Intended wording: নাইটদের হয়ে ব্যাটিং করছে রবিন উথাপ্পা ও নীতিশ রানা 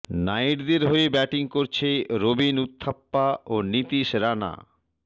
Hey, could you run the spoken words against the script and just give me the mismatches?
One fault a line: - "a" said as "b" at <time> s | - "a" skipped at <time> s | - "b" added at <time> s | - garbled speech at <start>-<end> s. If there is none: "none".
none